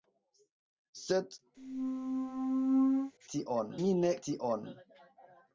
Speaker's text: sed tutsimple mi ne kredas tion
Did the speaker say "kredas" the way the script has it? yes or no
no